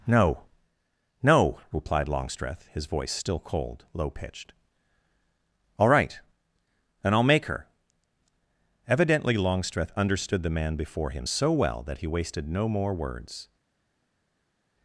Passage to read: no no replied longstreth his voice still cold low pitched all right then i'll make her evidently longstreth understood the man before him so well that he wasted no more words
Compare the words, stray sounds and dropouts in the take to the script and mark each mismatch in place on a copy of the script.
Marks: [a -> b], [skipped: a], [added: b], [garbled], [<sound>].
no no replied longstreth his voice still cold low pitched all right [then -> and] i'll make her evidently longstreth understood the man before him so well that he wasted no more words